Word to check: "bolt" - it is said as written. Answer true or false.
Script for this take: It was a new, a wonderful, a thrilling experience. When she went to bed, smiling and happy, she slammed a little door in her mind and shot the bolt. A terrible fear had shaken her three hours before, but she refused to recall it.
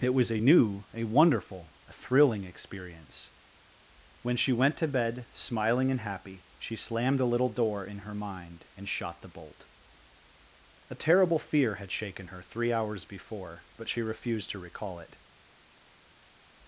true